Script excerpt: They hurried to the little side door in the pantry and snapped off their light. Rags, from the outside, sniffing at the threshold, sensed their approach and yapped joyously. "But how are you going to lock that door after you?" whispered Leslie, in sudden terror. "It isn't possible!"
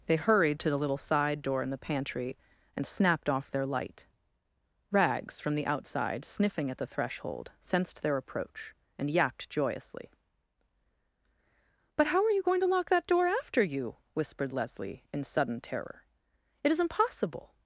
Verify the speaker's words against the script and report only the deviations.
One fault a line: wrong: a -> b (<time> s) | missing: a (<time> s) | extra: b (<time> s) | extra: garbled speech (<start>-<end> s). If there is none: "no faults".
wrong: isn't possible -> is impossible (16.7 s)